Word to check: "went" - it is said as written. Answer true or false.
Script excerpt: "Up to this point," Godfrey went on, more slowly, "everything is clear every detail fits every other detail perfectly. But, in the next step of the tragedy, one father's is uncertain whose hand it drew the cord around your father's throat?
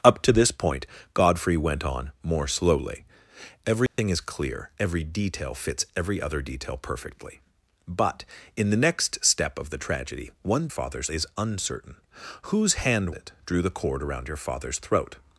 true